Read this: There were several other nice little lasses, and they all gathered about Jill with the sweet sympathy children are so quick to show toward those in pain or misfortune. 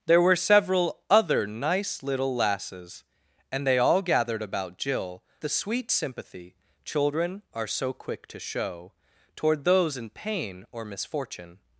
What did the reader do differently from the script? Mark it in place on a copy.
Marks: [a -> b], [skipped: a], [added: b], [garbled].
There were several other nice little lasses, and they all gathered about Jill [skipped: with] the sweet sympathy children are so quick to show toward those in pain or misfortune.